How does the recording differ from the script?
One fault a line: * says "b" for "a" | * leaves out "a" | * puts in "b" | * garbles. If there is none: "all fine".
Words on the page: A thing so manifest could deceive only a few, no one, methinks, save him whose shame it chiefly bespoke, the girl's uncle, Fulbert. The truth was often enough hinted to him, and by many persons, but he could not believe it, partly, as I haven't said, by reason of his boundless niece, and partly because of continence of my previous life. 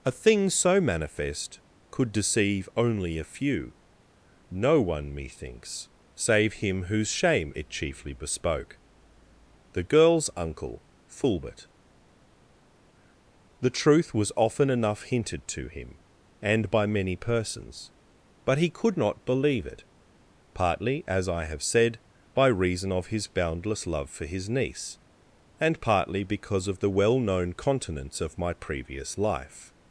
* says "have" for "haven't"
* puts in "love for his"
* puts in "the well known"